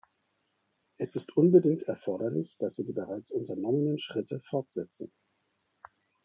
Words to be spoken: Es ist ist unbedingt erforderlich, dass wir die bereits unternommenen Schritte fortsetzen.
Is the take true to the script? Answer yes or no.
no